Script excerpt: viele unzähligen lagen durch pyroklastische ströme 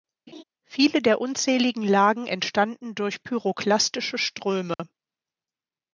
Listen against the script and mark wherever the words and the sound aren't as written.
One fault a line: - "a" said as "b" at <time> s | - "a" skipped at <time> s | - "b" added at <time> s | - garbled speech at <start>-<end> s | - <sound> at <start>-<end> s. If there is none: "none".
- laugh at 0.3-0.4 s
- "der" added at 1.0 s
- "entstanden" added at 2.3 s
- dropout at 4.7-4.8 s